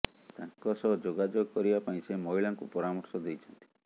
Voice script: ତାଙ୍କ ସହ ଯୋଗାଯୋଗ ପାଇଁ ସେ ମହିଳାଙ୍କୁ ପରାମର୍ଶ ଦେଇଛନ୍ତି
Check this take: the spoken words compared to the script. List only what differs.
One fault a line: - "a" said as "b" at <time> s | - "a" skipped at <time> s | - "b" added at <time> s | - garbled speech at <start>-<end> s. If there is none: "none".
- "କରିବା" added at 1.5 s